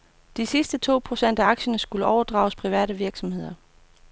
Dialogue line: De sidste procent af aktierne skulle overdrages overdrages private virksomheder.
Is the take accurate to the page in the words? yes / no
no